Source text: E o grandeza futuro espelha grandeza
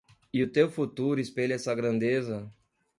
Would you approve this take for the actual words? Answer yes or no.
no